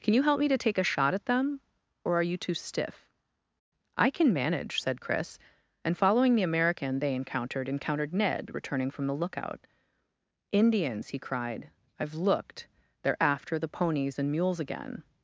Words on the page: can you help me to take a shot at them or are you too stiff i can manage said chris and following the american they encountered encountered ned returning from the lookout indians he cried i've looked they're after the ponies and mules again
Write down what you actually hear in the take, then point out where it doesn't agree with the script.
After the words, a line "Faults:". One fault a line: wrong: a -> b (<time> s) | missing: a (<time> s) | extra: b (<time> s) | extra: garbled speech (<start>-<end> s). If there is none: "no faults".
can you help me to take a shot at them or are you too stiff i can manage said chris and following the american they encountered encountered ned returning from the lookout indians he cried i've looked they're after the ponies and mules again
Faults:
no faults